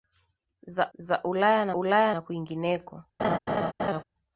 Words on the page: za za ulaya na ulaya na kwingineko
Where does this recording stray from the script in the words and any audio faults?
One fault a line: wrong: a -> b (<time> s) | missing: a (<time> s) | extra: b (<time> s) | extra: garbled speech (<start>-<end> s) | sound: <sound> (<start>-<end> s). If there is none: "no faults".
sound: laugh (3.2-4.0 s)